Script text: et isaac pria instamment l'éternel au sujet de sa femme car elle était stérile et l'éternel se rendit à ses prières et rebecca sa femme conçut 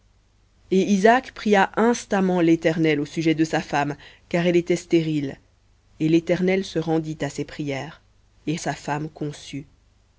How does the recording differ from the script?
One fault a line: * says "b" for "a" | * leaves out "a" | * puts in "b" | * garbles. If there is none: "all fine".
* leaves out "rebecca"